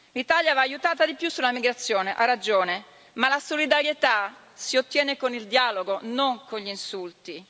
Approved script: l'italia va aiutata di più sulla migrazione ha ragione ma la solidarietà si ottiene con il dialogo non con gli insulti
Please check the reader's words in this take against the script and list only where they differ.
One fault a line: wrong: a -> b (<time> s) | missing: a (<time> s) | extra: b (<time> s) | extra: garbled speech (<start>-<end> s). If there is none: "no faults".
no faults